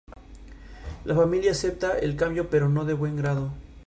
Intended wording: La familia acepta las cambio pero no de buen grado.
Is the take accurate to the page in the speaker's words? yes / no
no